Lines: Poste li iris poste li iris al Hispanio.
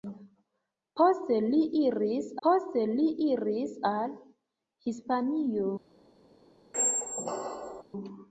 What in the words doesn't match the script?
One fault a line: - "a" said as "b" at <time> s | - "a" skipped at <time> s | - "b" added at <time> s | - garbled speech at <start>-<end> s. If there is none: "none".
none